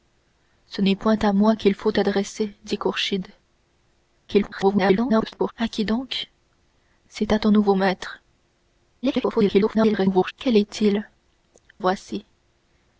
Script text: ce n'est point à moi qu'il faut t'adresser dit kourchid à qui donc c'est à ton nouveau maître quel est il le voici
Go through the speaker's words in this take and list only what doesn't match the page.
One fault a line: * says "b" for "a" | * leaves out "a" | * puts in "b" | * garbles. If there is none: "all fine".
* garbles
* garbles
* leaves out "le"